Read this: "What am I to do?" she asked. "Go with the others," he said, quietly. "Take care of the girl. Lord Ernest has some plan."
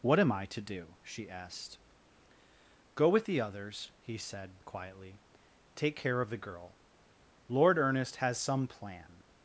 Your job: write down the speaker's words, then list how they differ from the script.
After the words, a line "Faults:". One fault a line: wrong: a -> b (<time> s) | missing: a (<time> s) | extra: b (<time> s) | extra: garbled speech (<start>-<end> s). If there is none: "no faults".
"What am I to do?" she asked. "Go with the others," he said, quietly. "Take care of the girl. Lord Ernest has some plan."
Faults:
no faults